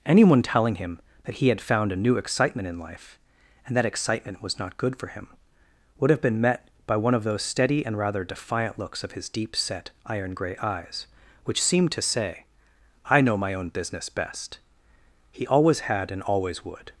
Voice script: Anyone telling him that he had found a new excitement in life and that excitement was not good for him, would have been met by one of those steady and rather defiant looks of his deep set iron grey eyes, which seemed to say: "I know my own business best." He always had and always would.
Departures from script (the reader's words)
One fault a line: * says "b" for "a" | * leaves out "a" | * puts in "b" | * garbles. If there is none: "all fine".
all fine